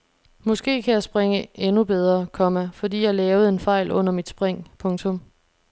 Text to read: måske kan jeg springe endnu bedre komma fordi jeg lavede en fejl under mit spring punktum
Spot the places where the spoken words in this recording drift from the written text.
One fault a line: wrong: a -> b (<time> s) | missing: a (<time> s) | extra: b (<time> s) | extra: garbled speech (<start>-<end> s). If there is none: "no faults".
no faults